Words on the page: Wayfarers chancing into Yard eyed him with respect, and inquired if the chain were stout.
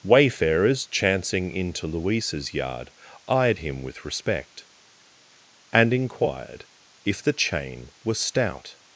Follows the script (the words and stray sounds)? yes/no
no